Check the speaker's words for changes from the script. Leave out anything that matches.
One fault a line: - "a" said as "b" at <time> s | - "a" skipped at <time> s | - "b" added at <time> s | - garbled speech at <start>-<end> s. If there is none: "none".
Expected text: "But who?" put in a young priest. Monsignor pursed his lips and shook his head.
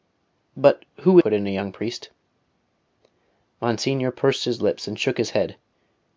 none